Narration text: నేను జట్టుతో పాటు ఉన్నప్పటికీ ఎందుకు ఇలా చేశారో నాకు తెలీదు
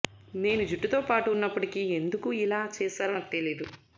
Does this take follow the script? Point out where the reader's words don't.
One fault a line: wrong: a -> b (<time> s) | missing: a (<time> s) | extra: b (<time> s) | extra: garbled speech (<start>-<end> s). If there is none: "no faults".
no faults